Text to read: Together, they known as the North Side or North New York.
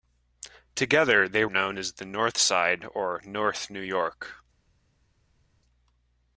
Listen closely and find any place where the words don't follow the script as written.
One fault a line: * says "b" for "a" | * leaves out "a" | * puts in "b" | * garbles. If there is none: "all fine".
all fine